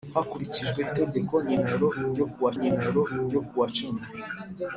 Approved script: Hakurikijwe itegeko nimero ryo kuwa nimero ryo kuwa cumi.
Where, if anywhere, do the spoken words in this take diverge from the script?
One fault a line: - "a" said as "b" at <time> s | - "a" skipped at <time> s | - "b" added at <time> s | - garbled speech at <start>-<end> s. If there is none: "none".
none